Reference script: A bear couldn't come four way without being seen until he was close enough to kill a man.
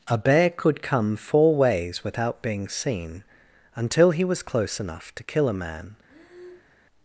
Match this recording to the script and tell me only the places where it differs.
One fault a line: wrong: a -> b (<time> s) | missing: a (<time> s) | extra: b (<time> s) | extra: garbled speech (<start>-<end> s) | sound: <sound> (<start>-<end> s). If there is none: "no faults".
wrong: couldn't -> could (0.5 s)
wrong: way -> ways (1.6 s)
sound: breath (6.1-6.8 s)